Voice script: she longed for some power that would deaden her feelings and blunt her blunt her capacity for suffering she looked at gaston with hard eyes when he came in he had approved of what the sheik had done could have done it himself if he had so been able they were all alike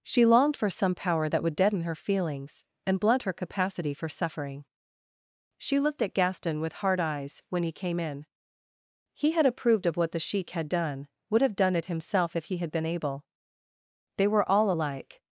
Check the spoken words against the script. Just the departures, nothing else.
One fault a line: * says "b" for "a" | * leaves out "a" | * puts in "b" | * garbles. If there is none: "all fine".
* leaves out "blunt her"
* says "would" for "could"
* leaves out "so"